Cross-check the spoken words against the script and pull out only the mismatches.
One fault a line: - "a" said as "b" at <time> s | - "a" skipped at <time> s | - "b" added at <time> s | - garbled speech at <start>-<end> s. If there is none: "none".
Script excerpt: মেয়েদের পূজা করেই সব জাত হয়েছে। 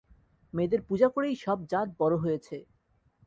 - "বড়" added at 2.0 s